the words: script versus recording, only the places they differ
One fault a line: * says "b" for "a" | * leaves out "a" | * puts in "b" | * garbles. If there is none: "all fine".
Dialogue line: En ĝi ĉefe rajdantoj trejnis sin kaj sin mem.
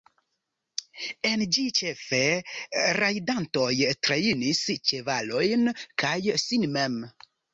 * says "ĉevalojn" for "sin"